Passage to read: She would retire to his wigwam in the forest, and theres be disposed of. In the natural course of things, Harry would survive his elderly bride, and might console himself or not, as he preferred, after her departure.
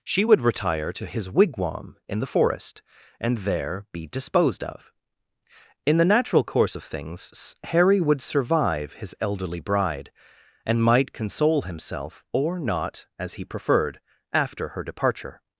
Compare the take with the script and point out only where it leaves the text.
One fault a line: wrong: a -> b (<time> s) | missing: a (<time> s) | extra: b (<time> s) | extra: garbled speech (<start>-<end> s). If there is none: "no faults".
wrong: theres -> there (3.4 s)